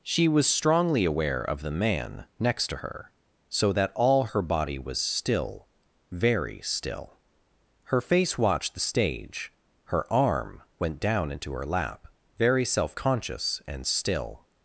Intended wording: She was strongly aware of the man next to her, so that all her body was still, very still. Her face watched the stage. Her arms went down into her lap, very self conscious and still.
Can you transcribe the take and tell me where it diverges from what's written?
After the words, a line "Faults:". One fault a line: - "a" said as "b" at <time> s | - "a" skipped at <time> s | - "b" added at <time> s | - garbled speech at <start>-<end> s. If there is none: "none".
She was strongly aware of the man next to her, so that all her body was still, very still. Her face watched the stage. Her arm went down into her lap, very self conscious and still.
Faults:
- "arms" said as "arm" at 10.1 s